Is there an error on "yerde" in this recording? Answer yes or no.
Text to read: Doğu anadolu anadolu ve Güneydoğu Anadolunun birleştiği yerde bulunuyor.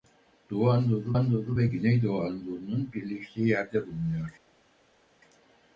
no